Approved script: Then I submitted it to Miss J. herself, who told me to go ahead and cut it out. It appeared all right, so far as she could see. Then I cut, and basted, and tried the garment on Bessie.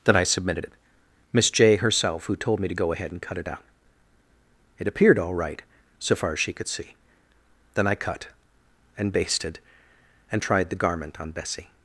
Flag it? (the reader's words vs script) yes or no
yes